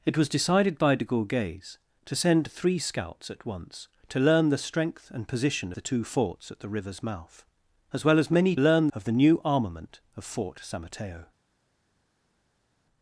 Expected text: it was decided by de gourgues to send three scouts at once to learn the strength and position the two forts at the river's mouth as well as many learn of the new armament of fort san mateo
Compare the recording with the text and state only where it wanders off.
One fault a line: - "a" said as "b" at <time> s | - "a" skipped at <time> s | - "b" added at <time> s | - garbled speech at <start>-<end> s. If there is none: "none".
none